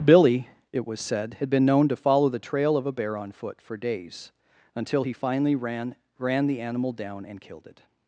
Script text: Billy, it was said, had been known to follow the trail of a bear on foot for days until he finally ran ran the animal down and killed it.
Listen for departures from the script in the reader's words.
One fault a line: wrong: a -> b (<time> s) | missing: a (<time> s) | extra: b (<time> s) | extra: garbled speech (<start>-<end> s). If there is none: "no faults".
no faults